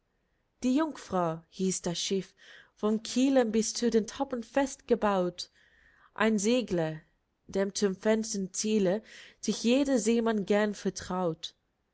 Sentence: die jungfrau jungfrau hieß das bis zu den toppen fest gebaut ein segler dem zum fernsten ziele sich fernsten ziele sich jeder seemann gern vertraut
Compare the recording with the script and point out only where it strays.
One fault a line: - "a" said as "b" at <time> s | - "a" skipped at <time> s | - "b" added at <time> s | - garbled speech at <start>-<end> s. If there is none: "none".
- "jungfrau" skipped at 1.4 s
- "schiff vom kiele" added at 2.0 s
- "fernsten ziele sich" skipped at 9.6 s